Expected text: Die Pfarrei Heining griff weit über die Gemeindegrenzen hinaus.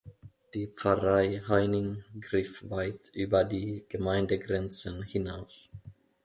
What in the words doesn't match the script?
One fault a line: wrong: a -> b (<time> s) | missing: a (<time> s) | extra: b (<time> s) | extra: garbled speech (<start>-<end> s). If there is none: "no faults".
no faults